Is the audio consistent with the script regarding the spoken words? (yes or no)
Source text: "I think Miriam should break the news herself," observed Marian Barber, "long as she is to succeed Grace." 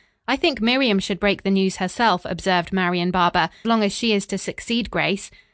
yes